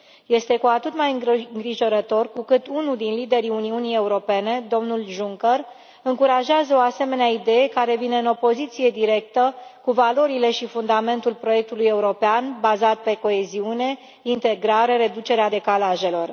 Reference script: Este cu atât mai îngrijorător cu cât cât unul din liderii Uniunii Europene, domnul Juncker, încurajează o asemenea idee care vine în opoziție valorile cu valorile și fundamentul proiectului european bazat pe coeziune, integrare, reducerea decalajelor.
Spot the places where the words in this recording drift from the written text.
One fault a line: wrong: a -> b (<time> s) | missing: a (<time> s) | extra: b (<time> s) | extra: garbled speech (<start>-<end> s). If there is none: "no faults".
missing: cât (2.7 s)
wrong: valorile -> directă (8.9 s)